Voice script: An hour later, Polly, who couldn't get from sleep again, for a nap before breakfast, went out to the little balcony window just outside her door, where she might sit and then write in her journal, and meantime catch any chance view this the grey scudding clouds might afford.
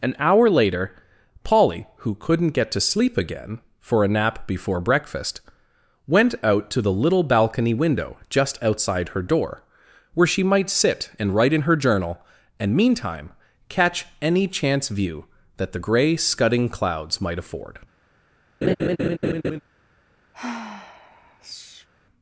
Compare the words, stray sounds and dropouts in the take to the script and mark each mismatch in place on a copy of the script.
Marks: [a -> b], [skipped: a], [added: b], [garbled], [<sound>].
An hour later, Polly, who couldn't get [from -> to] sleep again, for a nap before breakfast, went out to the little balcony window just outside her door, where she might sit and [skipped: then] write in her journal, and meantime catch any chance view [this -> that] the grey scudding clouds might afford. [laugh] [sigh]